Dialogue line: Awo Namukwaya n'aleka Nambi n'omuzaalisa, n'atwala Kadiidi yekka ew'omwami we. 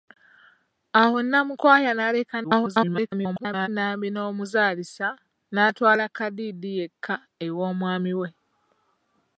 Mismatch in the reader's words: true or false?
true